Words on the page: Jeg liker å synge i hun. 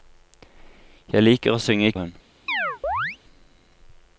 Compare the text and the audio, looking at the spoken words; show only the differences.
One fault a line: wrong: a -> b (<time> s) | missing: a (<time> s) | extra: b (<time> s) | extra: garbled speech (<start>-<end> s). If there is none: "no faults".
no faults